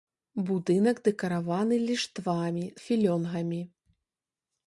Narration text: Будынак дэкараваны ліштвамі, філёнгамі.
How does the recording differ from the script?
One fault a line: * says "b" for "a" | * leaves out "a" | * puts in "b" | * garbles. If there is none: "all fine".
all fine